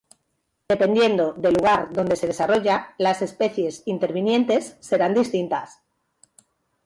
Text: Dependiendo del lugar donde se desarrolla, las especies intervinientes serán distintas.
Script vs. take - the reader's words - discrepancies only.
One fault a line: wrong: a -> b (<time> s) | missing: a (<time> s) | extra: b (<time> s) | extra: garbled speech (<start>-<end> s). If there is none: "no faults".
no faults